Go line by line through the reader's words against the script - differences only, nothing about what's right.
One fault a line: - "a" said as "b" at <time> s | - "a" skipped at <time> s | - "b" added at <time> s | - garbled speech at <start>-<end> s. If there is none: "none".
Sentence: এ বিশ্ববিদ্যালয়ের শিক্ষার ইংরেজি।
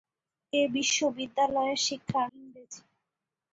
none